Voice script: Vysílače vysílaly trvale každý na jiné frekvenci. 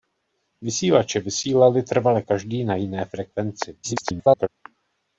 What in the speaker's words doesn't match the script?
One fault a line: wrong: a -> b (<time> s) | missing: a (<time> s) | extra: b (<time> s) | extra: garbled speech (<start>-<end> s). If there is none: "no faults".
extra: garbled speech (3.8-4.5 s)